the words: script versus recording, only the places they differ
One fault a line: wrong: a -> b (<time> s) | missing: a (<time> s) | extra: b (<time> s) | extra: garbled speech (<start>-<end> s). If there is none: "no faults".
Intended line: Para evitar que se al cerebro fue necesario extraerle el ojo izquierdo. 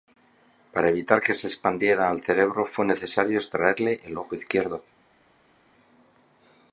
extra: expandiera (1.4 s)